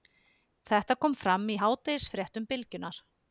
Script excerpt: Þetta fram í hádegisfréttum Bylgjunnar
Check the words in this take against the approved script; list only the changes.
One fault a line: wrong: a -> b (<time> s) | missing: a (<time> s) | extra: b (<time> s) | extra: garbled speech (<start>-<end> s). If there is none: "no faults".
extra: kom (1.1 s)